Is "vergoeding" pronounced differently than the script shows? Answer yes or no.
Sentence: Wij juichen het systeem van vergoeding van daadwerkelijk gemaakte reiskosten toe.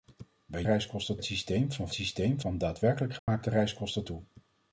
yes